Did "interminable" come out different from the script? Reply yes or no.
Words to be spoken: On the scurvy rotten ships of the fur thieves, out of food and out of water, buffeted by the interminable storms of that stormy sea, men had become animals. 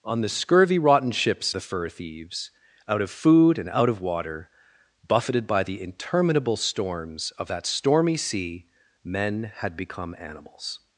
no